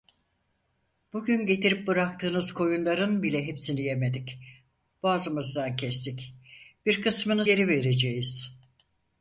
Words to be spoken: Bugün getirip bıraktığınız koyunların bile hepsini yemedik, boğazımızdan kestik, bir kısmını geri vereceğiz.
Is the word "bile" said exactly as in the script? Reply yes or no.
yes